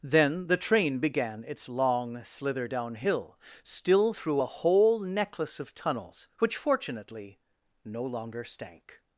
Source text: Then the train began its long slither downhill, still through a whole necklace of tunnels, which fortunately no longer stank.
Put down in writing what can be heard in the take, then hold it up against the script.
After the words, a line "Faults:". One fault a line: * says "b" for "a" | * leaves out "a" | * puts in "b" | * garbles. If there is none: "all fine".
Then the train began its long slither downhill, still through a whole necklace of tunnels, which fortunately no longer stank.
Faults:
all fine